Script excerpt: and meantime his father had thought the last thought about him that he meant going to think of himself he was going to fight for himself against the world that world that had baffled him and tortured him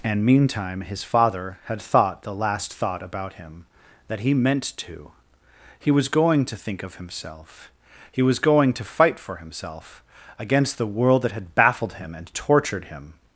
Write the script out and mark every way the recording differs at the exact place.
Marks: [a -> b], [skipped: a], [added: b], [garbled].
and meantime his father had thought the last thought about him that he meant [added: to he was] going to think of himself he was going to fight for himself against the world that [skipped: world that] had baffled him and tortured him